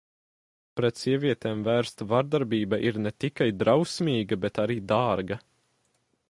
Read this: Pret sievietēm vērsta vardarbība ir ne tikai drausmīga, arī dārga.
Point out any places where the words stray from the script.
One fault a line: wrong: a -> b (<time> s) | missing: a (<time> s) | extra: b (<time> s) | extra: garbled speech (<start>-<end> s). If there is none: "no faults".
extra: bet (4.5 s)